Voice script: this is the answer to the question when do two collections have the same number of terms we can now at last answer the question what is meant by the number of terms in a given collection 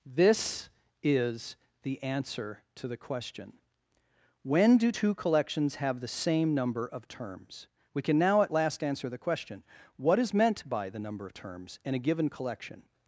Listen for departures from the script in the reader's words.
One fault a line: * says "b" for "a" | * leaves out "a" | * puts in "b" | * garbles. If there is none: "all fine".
all fine